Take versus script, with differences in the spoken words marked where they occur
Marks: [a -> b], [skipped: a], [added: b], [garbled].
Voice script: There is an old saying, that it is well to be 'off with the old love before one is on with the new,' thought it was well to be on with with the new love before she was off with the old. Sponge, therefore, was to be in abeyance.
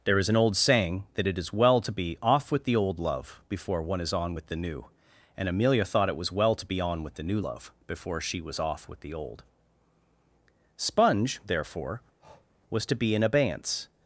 There is an old saying, that it is well to be 'off with the old love before one is on with the new,' [added: and Amelia] thought it was well to be on with [skipped: with] the new love before she was off with the old. Sponge, therefore, was to be in abeyance.